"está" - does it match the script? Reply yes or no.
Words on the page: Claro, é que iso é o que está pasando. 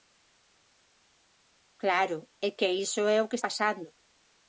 no